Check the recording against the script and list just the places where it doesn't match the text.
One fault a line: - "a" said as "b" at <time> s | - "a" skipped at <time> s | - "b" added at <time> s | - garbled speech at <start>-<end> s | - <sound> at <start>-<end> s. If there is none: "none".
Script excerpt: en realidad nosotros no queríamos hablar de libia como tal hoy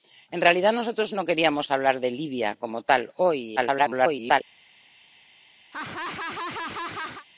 - garbled speech at 3.6-4.4 s
- laugh at 5.7-7.3 s